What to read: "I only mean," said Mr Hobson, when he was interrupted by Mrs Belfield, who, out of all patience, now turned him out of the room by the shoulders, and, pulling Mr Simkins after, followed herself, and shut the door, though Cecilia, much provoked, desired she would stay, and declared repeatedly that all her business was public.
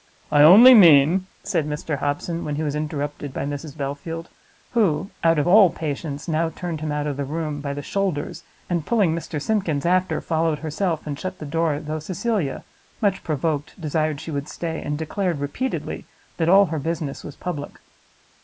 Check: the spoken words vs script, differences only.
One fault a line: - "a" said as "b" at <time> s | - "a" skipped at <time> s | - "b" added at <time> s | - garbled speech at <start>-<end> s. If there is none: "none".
none